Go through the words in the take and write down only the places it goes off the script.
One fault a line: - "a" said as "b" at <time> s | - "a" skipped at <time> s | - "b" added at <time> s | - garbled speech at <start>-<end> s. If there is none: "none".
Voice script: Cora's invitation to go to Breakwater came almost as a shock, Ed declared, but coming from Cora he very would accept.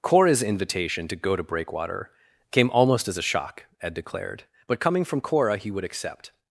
- "very" skipped at 5.7 s